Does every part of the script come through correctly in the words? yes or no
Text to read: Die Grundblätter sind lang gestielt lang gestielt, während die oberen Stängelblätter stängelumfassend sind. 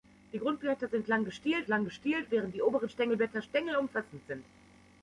yes